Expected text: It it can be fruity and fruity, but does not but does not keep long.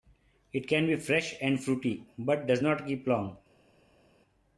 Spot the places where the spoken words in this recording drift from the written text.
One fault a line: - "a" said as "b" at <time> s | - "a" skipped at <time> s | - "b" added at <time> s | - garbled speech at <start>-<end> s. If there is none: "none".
- "it" skipped at 0.7 s
- "fruity" said as "fresh" at 0.9 s
- "but does not" skipped at 2.9 s